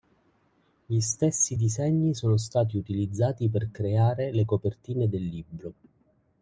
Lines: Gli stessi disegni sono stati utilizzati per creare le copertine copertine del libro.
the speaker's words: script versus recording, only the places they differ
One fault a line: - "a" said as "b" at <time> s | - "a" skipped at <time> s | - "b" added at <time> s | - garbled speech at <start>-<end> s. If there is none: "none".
- "copertine" skipped at 5.1 s